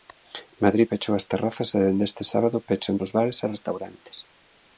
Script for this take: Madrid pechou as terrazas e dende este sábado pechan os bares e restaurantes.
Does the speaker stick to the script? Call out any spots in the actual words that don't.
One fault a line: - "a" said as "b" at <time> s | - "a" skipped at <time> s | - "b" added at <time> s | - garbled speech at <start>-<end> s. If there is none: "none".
none